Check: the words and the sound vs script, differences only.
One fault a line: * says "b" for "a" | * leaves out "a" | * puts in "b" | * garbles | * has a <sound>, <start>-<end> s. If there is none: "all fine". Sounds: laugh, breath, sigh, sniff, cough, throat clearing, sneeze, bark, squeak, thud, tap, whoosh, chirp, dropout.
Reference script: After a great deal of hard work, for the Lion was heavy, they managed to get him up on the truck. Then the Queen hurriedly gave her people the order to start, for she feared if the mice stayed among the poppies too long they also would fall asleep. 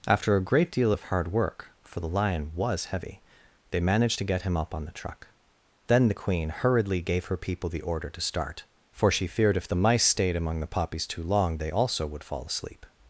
all fine